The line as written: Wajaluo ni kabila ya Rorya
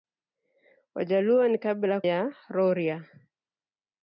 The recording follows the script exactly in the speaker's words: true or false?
true